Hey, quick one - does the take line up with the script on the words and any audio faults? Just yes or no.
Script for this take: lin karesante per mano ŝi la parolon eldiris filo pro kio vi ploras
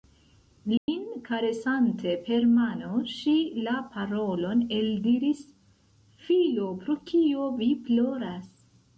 no